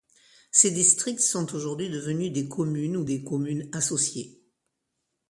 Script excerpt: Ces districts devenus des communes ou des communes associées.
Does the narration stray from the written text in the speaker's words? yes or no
yes